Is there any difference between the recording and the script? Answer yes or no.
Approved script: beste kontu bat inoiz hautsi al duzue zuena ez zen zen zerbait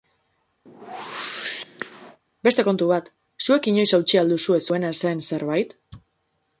yes